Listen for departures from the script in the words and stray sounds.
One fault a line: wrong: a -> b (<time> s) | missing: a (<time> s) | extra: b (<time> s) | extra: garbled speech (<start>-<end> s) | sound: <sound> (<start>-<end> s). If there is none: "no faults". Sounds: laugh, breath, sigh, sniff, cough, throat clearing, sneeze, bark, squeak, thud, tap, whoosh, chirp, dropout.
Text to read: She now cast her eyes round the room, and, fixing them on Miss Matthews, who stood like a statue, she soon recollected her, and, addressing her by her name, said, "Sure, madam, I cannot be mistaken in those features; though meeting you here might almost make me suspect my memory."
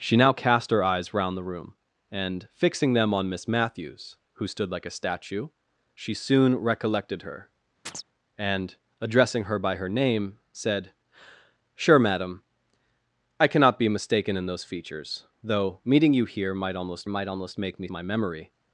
sound: chirp (7.9-8.0 s)
extra: might almost (17.1 s)
missing: suspect (17.9 s)